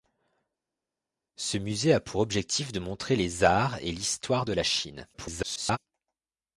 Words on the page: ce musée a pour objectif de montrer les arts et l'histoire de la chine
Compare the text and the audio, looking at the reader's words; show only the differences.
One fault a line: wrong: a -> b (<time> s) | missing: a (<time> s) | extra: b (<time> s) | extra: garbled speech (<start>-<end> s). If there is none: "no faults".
extra: garbled speech (5.1-5.8 s)